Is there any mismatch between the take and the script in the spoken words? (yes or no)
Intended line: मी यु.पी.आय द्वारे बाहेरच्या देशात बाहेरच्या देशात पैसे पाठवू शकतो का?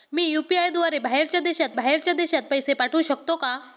no